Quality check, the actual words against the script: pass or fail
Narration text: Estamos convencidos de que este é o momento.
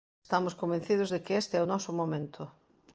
fail